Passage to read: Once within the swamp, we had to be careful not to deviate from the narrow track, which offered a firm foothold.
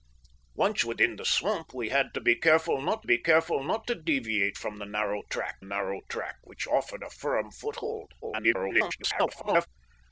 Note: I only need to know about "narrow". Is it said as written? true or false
true